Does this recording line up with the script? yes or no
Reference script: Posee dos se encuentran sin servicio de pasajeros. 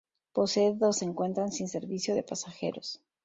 yes